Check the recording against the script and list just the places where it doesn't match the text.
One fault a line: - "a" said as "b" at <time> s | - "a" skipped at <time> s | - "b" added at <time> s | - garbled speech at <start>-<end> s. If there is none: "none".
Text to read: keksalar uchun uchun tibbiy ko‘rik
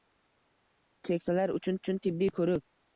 none